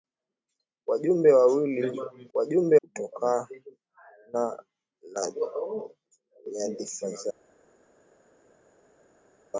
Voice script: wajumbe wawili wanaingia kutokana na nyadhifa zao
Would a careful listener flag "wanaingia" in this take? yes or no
yes